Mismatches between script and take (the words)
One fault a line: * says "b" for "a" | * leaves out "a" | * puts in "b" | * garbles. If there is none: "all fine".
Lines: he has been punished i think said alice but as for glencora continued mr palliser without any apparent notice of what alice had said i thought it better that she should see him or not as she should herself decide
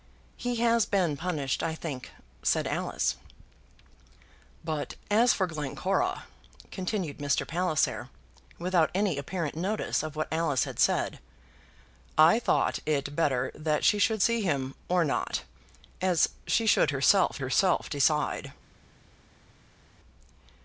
* puts in "herself"